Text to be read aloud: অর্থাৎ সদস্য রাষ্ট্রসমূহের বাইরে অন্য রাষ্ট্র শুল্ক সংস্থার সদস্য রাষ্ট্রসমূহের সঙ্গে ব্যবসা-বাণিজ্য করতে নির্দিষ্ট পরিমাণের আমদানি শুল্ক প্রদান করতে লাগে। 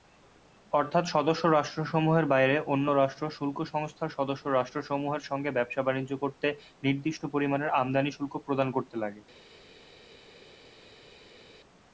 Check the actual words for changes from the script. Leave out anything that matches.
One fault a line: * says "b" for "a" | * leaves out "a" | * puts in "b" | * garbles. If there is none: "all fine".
all fine